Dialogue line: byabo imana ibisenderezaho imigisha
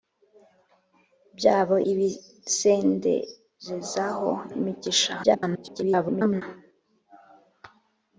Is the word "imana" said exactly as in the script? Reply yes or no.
no